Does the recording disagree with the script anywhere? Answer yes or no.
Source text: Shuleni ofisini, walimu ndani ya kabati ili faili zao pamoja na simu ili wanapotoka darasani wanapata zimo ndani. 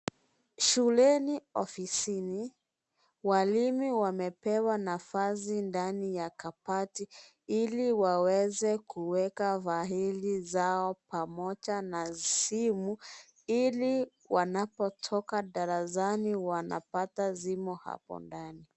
yes